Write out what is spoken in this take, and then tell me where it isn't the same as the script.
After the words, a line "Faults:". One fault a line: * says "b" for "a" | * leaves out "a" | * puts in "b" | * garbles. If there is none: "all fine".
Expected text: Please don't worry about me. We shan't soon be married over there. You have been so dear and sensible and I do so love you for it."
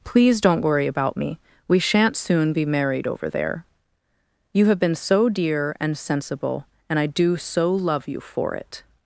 Please don't worry about me. We shan't soon be married over there. You have been so dear and sensible and I do so love you for it."
Faults:
all fine